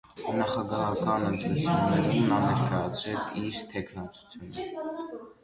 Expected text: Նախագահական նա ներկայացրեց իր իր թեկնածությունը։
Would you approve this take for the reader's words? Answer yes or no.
no